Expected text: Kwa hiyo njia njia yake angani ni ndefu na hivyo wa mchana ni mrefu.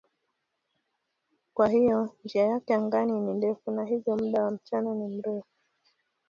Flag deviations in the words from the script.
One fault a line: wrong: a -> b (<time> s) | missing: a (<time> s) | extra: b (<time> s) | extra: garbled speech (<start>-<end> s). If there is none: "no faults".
missing: njia (2.4 s)
extra: muda (4.2 s)